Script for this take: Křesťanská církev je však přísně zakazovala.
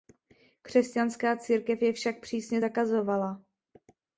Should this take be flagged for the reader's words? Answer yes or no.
no